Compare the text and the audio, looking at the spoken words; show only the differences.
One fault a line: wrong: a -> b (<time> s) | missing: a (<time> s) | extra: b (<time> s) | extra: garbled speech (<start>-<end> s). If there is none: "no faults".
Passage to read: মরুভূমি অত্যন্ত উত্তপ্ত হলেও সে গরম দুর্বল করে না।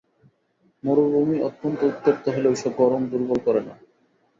no faults